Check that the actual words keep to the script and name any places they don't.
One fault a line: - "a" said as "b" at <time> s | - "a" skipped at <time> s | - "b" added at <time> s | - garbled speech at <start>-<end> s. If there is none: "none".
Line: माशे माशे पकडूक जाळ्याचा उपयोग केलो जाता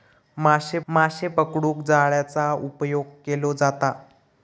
none